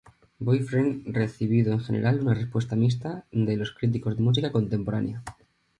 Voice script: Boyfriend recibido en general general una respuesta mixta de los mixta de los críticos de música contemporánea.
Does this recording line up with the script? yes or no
no